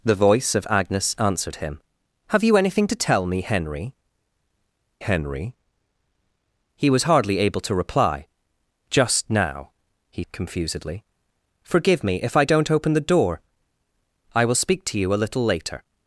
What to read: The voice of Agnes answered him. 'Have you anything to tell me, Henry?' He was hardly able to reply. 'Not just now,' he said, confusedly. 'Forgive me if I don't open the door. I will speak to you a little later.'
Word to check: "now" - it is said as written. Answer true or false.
true